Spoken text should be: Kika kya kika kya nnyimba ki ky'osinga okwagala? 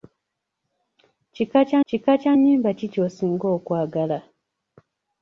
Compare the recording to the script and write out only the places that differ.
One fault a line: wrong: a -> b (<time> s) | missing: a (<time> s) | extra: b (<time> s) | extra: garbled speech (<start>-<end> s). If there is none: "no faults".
no faults